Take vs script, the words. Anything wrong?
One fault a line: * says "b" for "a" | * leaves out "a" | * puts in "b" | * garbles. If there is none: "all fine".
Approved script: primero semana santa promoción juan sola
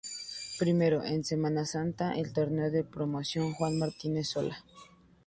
* puts in "en"
* puts in "el torneo de"
* puts in "martínez"